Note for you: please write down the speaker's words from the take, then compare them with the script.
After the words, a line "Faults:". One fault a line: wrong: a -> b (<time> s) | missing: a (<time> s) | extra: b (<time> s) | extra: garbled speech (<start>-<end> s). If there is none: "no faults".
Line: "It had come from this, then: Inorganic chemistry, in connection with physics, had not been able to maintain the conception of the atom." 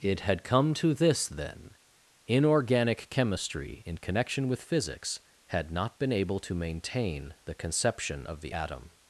"It had come to this, then: Inorganic chemistry, in connection with physics, had not been able to maintain the conception of the atom."
Faults:
wrong: from -> to (0.8 s)